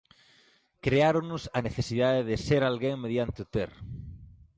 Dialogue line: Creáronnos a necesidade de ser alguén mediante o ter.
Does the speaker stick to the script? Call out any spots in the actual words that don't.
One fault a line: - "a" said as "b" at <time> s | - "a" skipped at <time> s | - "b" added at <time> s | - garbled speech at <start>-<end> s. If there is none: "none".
none